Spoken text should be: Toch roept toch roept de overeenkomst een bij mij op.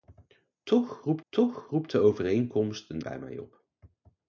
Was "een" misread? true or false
false